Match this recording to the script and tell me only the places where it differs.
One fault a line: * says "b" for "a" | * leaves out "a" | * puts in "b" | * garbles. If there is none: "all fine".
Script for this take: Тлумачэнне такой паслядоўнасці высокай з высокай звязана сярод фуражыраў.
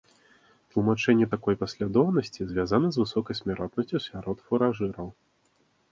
* says "звязана" for "высокай"
* says "смяротнасцю" for "звязана"